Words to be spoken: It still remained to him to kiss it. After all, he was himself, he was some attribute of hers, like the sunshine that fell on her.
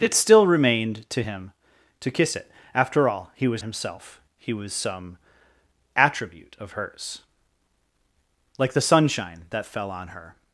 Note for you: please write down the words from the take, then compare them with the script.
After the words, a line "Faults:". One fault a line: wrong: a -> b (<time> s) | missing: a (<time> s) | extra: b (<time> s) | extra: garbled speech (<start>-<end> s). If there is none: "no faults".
It still remained to him to kiss it. After all, he was himself, he was some attribute of hers, like the sunshine that fell on her.
Faults:
no faults